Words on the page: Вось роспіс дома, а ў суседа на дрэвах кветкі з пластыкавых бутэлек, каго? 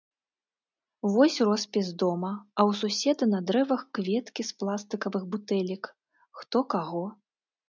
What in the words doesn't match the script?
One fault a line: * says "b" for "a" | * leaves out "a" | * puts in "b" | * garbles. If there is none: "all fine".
* puts in "хто"